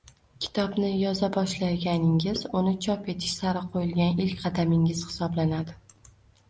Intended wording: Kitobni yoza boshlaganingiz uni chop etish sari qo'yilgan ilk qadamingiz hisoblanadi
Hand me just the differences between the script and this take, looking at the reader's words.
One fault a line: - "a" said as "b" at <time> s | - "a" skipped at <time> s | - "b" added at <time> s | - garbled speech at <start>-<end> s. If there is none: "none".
none